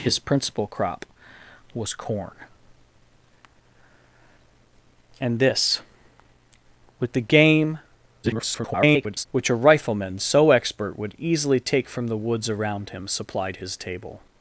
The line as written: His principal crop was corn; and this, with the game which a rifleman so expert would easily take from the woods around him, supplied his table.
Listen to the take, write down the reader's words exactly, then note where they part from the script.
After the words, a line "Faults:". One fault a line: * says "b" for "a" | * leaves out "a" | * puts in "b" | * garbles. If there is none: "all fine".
His principal crop was corn; and this, with the game [garbled] which a rifleman so expert would easily take from the woods around him, supplied his table.
Faults:
* garbles